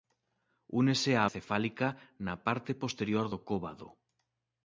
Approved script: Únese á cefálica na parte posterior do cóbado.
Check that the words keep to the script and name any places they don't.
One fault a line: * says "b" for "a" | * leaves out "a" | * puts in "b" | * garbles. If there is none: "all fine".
all fine